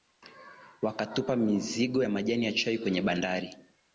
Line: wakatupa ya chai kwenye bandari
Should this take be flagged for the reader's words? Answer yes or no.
yes